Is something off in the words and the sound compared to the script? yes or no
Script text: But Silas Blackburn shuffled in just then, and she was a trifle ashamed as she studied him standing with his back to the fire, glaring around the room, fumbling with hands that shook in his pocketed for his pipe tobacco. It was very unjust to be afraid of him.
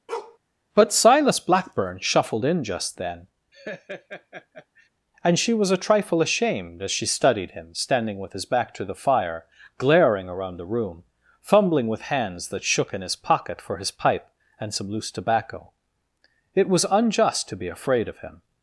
yes